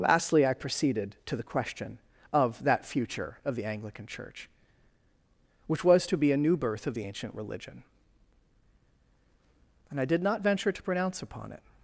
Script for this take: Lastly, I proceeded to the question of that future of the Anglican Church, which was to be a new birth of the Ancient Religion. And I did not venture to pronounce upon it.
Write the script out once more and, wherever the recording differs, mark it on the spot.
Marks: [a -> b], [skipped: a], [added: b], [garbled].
Lastly, I proceeded to the question of that future of the Anglican Church, which was to be a new birth of the Ancient Religion. And I did not venture to pronounce upon it.